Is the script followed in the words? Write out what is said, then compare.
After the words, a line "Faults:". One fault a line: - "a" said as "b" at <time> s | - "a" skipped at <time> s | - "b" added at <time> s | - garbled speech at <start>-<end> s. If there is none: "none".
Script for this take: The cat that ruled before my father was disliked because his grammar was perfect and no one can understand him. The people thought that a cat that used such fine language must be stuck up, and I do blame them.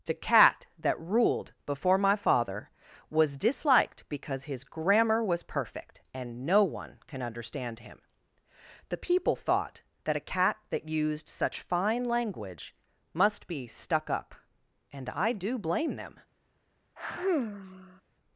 The cat that ruled before my father was disliked because his grammar was perfect and no one can understand him. The people thought that a cat that used such fine language must be stuck up, and I do blame them.
Faults:
none